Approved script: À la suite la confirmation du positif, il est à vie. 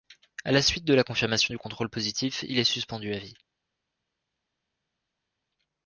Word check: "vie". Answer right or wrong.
right